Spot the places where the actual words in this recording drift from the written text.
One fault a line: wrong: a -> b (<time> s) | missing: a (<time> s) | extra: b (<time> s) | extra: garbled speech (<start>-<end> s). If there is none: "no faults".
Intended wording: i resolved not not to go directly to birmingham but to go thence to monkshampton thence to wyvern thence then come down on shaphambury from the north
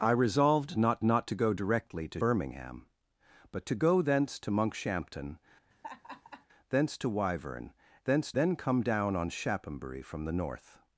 no faults